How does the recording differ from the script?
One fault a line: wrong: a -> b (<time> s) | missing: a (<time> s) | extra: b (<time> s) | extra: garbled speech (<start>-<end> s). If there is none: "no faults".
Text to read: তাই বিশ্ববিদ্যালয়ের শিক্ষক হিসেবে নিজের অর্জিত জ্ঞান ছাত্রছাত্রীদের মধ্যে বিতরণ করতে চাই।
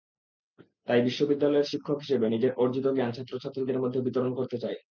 no faults